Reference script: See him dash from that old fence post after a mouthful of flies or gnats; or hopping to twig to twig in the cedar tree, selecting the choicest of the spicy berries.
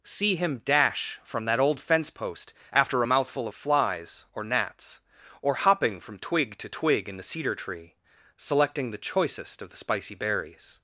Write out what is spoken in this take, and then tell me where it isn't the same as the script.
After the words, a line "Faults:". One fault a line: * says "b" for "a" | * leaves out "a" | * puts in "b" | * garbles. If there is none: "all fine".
See him dash from that old fence post after a mouthful of flies or gnats; or hopping from twig to twig in the cedar tree, selecting the choicest of the spicy berries.
Faults:
* says "from" for "to"